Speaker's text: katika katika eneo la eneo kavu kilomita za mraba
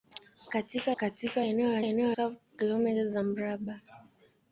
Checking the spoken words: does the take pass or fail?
pass